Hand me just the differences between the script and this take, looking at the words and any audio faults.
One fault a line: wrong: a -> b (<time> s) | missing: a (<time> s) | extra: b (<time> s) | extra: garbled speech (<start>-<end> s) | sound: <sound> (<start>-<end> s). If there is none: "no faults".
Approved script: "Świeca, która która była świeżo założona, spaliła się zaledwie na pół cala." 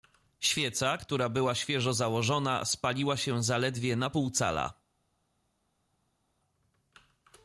missing: która (1.3 s)